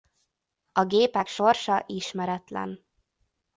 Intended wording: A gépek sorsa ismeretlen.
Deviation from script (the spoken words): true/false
false